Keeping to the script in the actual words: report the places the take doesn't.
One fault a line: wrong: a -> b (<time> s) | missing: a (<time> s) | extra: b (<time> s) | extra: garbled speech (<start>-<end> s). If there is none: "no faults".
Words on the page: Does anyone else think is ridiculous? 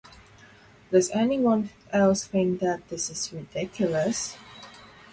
extra: that this (2.6 s)